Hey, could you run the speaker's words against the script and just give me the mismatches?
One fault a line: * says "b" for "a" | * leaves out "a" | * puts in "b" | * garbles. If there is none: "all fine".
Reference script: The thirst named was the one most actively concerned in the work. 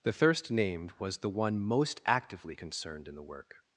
all fine